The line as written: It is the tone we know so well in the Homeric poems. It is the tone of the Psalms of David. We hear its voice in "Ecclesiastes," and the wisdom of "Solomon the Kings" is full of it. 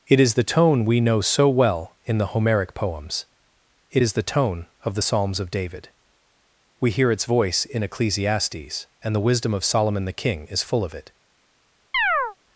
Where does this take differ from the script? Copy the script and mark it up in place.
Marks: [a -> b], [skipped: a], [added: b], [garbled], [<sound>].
It is the tone we know so well in the Homeric poems. It is the tone of the Psalms of David. We hear its voice in "Ecclesiastes," and the wisdom of "Solomon the [Kings" -> King] is full of it. [chirp]